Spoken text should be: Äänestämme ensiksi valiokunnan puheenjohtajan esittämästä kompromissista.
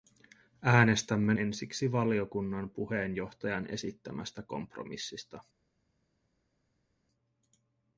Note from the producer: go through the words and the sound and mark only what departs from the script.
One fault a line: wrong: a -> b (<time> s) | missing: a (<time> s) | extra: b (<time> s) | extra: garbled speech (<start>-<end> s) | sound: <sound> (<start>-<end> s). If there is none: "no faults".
no faults